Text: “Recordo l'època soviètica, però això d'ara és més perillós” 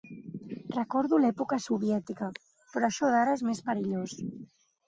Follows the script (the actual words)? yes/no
yes